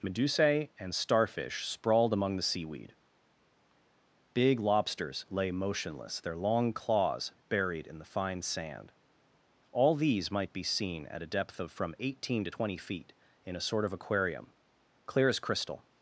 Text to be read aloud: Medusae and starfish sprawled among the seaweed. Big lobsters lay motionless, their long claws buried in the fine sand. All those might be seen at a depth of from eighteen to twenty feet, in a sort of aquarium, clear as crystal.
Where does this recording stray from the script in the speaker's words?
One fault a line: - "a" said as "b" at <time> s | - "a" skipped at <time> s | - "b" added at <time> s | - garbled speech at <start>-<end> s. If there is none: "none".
- "those" said as "these" at 9.9 s